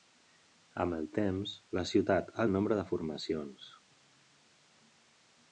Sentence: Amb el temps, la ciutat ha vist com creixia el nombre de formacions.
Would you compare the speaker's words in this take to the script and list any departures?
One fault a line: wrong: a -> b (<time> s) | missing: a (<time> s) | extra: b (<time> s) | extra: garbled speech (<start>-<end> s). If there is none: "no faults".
missing: vist com creixia (2.5 s)